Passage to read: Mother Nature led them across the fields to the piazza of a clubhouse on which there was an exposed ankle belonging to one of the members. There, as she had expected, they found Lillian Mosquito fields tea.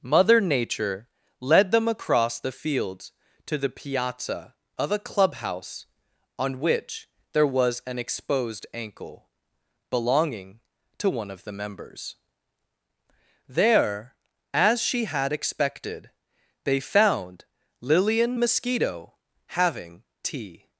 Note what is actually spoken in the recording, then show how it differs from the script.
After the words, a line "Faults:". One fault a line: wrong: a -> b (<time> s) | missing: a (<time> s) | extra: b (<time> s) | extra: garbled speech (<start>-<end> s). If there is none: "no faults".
Mother Nature led them across the fields to the piazza of a clubhouse on which there was an exposed ankle belonging to one of the members. There, as she had expected, they found Lillian Mosquito having tea.
Faults:
wrong: fields -> having (19.5 s)